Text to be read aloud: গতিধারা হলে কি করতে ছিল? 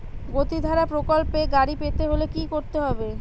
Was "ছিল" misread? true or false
true